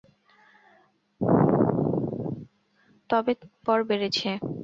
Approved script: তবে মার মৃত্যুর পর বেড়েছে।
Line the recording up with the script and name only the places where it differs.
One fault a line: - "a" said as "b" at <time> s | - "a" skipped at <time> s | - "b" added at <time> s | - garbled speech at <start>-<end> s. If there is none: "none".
- "মার মৃত্যুর" skipped at 3.3 s